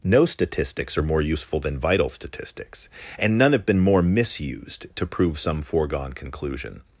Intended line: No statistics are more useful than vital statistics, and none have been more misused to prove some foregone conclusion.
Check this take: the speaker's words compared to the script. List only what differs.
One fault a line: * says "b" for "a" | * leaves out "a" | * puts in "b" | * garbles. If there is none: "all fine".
all fine